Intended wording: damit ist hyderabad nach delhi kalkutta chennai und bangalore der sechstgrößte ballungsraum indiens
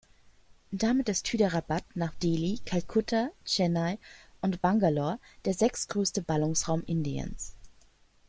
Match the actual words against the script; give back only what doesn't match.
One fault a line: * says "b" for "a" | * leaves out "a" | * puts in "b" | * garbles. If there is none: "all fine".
all fine